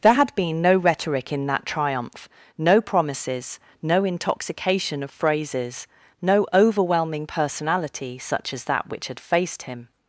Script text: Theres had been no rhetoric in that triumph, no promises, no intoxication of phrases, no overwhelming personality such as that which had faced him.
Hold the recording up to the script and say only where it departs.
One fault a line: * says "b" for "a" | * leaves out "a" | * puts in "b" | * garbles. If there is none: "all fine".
* says "There" for "Theres"